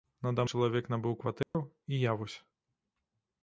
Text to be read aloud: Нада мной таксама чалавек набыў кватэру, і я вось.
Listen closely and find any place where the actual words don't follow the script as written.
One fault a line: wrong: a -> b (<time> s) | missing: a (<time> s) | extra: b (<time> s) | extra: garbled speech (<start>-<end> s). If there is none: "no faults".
missing: мной таксама (0.5 s)